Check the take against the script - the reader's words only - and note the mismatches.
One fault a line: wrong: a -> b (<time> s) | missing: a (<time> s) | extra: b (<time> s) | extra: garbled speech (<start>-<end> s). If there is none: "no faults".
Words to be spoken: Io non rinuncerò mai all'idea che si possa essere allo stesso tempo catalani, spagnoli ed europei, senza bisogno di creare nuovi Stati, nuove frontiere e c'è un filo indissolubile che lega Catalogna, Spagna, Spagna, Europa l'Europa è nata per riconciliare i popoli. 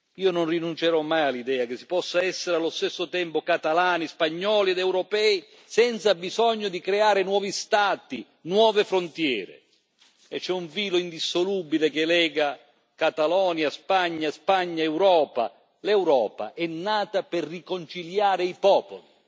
no faults